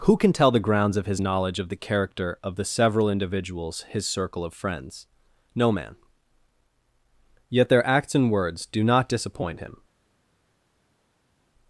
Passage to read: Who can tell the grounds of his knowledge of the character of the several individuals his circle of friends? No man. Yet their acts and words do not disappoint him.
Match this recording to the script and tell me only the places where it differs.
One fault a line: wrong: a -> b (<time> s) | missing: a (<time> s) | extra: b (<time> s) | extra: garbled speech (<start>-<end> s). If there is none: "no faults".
no faults